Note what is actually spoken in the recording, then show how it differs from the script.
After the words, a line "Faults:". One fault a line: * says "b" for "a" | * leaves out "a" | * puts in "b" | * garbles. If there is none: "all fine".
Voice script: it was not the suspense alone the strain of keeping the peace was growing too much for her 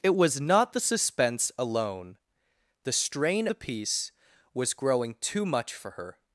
it was not the suspense alone the strain the peace was growing too much for her
Faults:
* leaves out "of keeping"